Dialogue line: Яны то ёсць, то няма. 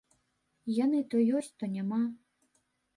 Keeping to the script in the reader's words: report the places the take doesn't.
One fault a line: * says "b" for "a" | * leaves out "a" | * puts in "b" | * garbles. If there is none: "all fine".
all fine